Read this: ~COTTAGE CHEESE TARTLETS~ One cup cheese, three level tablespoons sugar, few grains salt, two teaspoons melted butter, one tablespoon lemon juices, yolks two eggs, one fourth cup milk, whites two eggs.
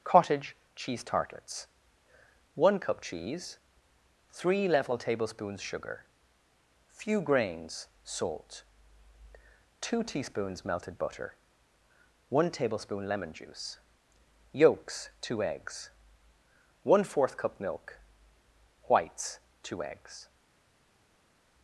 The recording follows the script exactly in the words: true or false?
false